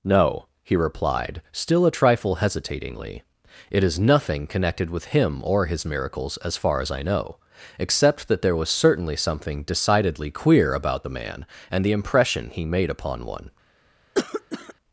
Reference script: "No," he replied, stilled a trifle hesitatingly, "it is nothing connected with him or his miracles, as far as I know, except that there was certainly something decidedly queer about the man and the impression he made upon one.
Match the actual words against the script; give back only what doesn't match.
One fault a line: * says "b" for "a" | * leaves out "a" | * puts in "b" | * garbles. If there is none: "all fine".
* says "still" for "stilled"